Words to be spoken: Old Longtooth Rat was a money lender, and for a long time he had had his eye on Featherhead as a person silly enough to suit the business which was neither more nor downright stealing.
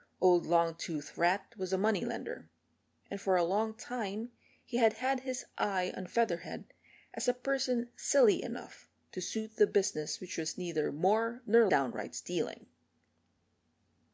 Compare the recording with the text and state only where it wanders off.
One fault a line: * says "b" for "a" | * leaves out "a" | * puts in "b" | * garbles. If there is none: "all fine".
all fine